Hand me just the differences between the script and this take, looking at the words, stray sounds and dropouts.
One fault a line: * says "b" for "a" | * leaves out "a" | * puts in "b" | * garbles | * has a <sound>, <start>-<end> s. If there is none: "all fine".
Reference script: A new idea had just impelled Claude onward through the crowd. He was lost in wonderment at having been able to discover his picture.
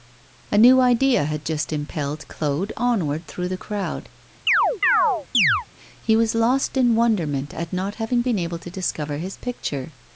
* has a chirp, 4.5-5.7 s
* puts in "not"